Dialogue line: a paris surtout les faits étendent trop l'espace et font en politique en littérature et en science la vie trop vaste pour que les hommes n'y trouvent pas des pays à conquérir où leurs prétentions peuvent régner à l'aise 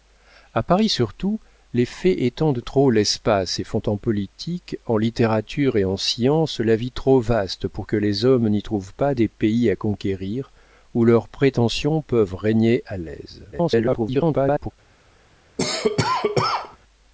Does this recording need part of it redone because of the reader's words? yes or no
yes